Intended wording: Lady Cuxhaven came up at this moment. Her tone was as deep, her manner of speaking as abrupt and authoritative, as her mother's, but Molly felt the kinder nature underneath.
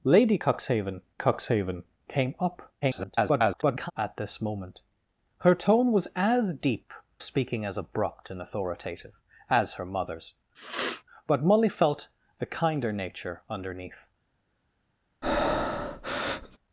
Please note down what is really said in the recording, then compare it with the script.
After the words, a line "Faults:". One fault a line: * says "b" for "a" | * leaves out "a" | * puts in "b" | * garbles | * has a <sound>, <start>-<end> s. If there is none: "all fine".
Lady Cuxhaven Cuxhaven came up [garbled] at this moment. Her tone was as deep, speaking as abrupt and authoritative, as her mother's, but Molly felt the kinder nature underneath.
Faults:
* puts in "Cuxhaven"
* garbles
* leaves out "her manner of"
* has a sniff, 10.5-11.0 s
* has a breath, 15.2-16.6 s